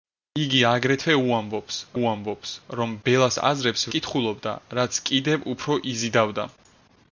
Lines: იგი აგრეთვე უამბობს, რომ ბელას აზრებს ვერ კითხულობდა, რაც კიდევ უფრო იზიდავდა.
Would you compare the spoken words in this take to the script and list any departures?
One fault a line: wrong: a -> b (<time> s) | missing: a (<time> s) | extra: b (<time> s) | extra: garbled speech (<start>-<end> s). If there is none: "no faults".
extra: უამბობს (2.0 s)
missing: ვერ (3.9 s)